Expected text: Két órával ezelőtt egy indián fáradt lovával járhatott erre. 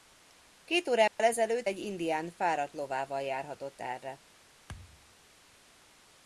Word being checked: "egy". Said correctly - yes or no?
yes